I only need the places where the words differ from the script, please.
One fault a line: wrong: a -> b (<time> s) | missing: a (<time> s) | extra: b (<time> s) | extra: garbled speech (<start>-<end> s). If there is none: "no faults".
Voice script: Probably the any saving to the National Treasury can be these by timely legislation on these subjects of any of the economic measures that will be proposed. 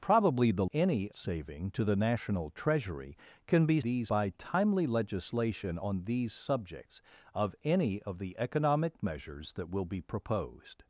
no faults